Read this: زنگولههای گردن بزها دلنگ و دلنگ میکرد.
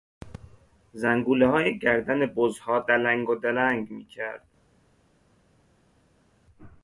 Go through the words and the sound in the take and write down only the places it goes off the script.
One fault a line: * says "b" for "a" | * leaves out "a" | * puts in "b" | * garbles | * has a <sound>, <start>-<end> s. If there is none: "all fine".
all fine